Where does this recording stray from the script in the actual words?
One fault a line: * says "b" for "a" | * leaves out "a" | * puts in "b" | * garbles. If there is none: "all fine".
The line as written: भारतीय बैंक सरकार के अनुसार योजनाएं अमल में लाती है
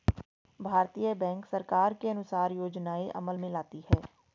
all fine